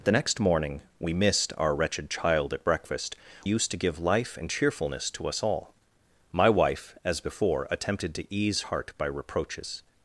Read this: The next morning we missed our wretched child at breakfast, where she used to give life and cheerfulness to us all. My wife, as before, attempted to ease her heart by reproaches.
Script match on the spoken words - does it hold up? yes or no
no